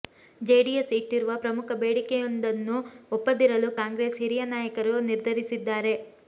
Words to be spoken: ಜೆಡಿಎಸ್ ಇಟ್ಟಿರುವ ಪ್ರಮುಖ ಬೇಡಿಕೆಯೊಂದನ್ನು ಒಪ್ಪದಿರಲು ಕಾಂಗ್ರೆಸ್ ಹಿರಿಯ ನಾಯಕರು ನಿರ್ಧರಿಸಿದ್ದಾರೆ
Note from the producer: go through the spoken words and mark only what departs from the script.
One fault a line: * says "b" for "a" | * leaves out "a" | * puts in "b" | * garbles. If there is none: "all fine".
all fine